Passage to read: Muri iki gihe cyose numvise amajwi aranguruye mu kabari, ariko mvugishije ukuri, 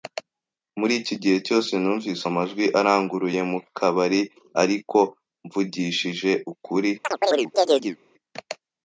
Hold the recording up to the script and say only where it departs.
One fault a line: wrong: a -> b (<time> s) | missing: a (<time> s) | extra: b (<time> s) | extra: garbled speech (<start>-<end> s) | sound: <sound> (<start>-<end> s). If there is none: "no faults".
sound: chirp (7.0-8.0 s)